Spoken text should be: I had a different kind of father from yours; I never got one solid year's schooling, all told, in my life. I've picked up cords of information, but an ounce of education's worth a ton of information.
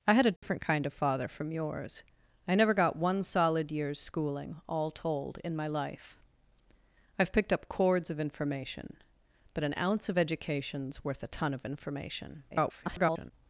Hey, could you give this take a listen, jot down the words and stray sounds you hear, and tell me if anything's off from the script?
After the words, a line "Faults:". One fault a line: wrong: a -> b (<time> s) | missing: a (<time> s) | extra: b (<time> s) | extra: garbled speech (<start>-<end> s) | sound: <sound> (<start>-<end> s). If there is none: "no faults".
I had a different kind of father from yours; I never got one solid year's schooling, all told, in my life. I've picked up cords of information, but an ounce of education's worth a ton of information. [garbled]
Faults:
sound: dropout (0.4-0.4 s)
extra: garbled speech (12.5-13.3 s)